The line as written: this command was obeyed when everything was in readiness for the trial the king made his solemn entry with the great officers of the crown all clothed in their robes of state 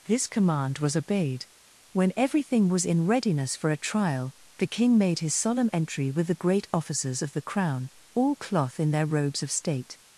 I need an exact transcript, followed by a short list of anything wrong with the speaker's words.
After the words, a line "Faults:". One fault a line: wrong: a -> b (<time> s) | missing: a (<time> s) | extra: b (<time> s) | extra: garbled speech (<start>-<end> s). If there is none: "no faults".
this command was obeyed when everything was in readiness for a trial the king made his solemn entry with the great officers of the crown all cloth in their robes of state
Faults:
wrong: the -> a (3.7 s)
wrong: clothed -> cloth (8.4 s)